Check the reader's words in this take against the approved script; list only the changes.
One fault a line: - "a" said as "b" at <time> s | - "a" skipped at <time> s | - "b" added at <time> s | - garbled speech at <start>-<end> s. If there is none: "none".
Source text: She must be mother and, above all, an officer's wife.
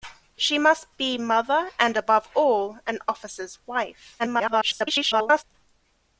- garbled speech at 4.2-5.4 s